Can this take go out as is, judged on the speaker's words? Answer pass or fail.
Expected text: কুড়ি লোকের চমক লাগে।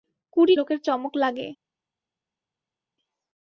pass